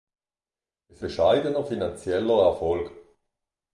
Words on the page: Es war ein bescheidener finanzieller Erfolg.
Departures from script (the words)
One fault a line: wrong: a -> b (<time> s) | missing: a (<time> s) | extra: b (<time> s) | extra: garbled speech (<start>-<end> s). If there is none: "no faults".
missing: war ein (1.1 s)